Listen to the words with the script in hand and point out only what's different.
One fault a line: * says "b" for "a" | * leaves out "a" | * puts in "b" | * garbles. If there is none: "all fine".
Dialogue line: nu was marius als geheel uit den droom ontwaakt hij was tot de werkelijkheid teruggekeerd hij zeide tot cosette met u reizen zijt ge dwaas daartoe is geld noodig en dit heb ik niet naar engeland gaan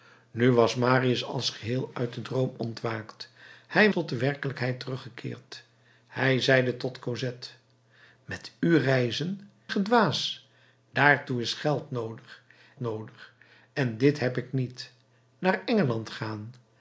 * leaves out "was"
* leaves out "zijt"
* puts in "noodig"